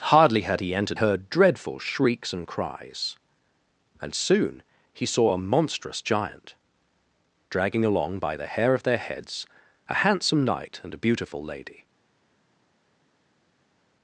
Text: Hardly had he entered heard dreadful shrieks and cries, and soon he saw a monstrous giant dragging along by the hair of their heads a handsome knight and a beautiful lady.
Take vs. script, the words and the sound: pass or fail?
pass